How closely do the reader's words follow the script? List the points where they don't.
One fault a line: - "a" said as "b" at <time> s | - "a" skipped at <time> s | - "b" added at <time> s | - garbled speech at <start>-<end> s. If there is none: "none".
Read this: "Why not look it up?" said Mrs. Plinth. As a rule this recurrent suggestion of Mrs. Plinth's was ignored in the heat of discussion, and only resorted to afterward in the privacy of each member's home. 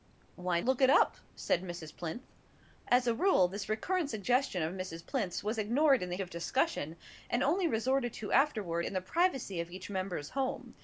- "not" skipped at 0.6 s
- "heat" skipped at 6.2 s